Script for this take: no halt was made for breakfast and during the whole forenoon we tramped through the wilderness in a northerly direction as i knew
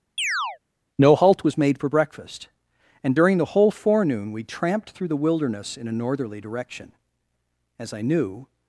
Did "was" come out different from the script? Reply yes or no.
no